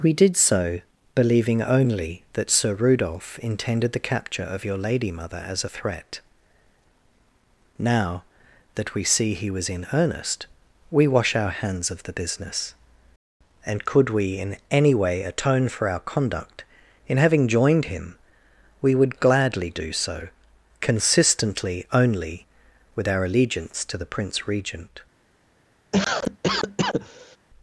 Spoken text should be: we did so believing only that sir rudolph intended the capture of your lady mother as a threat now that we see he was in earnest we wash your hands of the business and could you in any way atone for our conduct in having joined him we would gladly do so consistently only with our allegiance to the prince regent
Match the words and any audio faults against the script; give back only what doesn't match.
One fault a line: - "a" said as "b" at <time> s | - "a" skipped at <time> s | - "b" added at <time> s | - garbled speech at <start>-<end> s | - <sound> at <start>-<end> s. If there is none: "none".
- "your" said as "our" at 11.3 s
- "you" said as "we" at 14.1 s
- cough at 25.9-27.4 s